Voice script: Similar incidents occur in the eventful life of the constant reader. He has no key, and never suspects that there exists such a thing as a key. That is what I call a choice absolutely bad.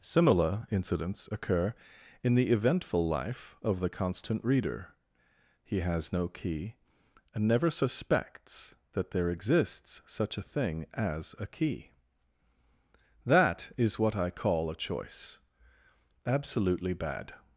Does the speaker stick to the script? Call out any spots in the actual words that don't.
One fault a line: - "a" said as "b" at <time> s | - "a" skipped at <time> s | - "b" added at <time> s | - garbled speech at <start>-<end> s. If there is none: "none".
none